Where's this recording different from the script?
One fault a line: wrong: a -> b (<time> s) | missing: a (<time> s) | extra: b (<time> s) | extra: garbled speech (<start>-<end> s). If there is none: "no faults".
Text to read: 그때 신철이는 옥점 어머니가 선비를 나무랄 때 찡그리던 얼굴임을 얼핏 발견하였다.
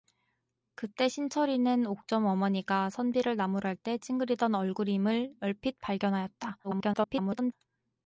extra: garbled speech (6.6-7.5 s)